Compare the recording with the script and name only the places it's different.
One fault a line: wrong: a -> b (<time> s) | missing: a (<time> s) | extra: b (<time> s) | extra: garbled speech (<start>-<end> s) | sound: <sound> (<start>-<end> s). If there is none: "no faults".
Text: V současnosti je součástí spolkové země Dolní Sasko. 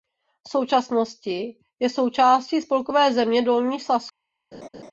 sound: laugh (4.5-4.9 s)